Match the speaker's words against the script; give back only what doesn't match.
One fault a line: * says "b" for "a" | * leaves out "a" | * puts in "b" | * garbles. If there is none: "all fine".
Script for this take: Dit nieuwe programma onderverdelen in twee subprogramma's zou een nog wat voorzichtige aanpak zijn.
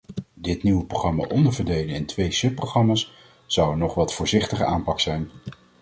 all fine